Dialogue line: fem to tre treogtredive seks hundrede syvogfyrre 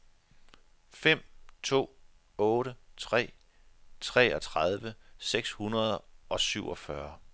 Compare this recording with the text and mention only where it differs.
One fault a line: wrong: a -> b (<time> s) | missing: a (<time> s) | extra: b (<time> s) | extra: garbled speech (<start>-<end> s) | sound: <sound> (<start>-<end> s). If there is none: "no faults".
extra: otte (2.4 s)
extra: og (6.3 s)